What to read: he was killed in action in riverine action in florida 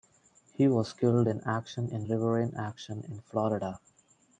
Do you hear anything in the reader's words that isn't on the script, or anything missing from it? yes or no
no